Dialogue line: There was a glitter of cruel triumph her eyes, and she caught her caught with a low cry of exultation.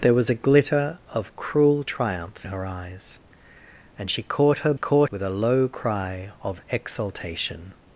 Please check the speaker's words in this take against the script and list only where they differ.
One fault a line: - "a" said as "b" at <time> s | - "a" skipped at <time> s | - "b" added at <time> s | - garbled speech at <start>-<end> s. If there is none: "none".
none